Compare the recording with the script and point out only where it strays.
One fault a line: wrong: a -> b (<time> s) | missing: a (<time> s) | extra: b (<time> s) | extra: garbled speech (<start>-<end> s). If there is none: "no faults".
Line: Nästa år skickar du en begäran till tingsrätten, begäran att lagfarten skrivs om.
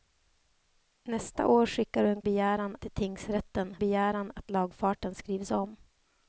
no faults